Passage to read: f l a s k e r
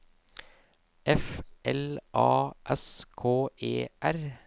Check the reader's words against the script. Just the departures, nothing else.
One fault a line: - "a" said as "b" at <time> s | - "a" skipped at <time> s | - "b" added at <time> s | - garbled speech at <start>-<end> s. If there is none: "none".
none